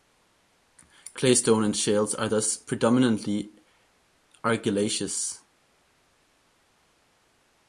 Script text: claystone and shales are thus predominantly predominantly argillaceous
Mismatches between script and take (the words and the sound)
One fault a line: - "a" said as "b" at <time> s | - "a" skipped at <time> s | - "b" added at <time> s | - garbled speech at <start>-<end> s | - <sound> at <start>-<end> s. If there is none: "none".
- "predominantly" skipped at 3.5 s